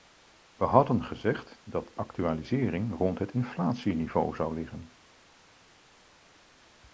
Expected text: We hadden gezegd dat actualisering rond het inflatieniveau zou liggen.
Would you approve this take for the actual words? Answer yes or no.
yes